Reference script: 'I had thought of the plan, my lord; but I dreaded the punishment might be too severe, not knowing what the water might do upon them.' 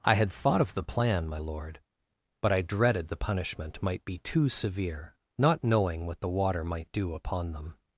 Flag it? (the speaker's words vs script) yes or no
no